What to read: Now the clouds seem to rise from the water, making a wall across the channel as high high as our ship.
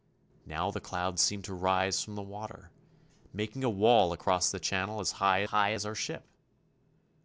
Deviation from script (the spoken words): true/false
false